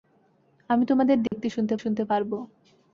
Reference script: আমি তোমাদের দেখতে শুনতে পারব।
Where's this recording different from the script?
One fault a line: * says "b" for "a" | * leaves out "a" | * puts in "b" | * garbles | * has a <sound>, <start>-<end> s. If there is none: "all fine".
* has a dropout, 1.3-1.3 s
* puts in "শুনতে"